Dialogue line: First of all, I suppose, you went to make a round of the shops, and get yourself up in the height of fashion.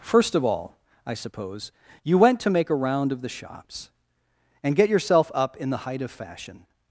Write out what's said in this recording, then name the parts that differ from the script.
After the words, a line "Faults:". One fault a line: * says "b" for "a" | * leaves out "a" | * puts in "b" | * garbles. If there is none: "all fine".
First of all, I suppose, you went to make a round of the shops, and get yourself up in the height of fashion.
Faults:
all fine